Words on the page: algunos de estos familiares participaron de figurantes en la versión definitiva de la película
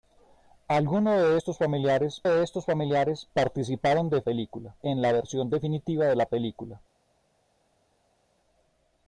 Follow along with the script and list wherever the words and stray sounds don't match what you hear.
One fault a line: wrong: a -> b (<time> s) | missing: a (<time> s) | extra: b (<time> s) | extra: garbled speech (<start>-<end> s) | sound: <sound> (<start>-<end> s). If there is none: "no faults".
extra: de estos familiares (2.3 s)
wrong: figurantes -> película (4.2 s)